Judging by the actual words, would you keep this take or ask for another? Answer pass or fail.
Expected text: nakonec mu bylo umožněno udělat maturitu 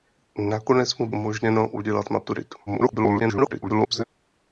fail